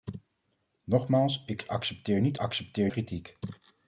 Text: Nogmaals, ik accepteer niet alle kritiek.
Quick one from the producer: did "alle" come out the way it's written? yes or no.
no